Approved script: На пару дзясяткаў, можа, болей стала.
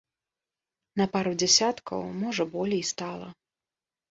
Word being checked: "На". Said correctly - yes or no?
yes